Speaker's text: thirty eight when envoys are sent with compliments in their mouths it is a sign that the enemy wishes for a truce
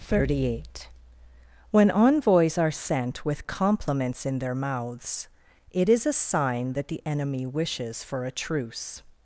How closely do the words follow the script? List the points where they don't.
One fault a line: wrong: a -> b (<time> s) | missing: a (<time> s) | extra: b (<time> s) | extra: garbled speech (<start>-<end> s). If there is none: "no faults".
no faults